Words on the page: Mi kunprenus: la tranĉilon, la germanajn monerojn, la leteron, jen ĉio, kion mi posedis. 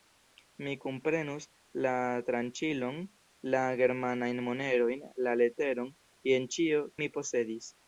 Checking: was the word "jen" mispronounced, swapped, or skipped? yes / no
no